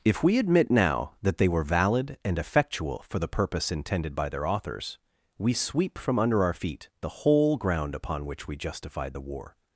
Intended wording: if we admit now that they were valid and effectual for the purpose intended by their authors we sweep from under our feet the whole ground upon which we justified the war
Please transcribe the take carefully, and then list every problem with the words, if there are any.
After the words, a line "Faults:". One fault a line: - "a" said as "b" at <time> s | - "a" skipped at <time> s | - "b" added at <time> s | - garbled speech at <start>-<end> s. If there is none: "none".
if we admit now that they were valid and effectual for the purpose intended by their authors we sweep from under our feet the whole ground upon which we justified the war
Faults:
none